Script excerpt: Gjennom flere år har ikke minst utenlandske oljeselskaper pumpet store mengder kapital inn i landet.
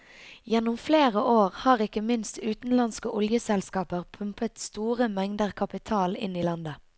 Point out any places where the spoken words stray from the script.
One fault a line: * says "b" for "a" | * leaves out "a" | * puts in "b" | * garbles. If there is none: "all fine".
all fine